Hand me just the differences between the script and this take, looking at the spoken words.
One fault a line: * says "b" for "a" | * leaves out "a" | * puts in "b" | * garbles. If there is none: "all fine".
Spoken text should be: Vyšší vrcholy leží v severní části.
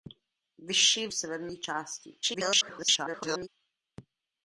* leaves out "vrcholy leží"
* garbles